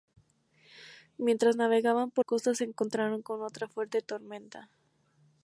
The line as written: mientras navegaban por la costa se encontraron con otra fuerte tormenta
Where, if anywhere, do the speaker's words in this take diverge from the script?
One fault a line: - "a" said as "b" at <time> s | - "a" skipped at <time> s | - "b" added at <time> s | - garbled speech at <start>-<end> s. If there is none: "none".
- "la" skipped at 2.2 s